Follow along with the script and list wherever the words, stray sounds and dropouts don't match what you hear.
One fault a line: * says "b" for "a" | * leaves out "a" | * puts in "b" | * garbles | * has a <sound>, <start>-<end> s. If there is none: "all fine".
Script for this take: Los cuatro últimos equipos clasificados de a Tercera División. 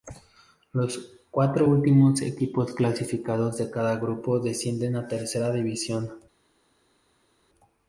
* puts in "cada grupo descienden"